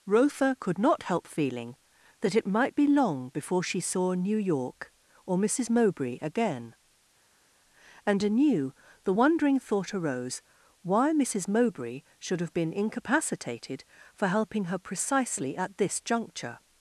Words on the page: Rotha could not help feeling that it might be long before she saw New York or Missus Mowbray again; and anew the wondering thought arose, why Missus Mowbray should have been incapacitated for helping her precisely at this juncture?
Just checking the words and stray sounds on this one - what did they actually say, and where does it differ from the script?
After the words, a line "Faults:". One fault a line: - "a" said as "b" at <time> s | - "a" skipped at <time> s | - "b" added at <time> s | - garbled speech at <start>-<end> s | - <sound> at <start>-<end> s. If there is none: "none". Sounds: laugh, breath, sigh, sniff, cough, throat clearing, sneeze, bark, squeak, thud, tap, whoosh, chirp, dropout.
Rotha could not help feeling that it might be long before she saw New York or Missus Mowbray again; and anew the wondering thought arose, why Missus Mowbray should have been incapacitated for helping her precisely at this juncture?
Faults:
none